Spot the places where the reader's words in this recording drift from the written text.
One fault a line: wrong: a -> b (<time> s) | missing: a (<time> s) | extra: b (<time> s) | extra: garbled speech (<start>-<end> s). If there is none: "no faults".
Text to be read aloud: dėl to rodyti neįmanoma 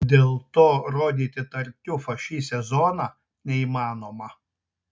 extra: tartiufą šį sezoną (1.6 s)